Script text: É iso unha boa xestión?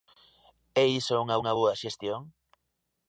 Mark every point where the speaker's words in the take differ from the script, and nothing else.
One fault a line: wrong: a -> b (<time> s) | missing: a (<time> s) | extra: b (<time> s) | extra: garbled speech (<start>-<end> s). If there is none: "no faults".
extra: unha (1.4 s)